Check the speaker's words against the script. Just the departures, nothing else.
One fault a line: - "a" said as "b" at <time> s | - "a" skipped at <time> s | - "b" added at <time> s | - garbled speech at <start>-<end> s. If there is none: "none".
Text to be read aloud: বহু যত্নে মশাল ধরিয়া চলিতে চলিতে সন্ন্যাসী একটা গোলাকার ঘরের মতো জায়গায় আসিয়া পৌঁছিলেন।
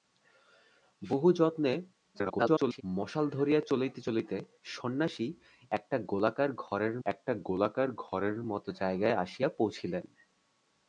- garbled speech at 2.1-2.8 s
- "একটা গোলাকার ঘরের" added at 7.0 s